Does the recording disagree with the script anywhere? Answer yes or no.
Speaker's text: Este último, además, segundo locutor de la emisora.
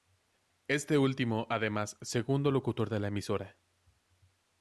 no